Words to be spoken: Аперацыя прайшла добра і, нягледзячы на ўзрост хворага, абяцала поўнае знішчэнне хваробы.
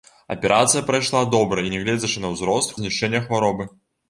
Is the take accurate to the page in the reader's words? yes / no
no